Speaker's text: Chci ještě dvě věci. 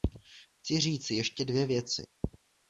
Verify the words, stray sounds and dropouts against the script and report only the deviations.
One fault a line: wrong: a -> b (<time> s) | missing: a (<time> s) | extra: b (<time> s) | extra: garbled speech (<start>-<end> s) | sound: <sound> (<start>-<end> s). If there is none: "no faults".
extra: říci (0.8 s)